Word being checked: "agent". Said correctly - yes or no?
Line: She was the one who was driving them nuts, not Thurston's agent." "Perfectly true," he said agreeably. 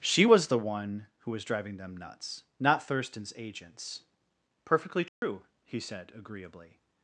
no